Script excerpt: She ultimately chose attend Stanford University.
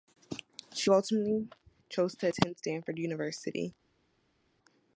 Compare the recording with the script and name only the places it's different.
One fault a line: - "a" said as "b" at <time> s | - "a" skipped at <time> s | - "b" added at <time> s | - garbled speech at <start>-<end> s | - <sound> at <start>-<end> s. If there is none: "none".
- "to" added at 2.2 s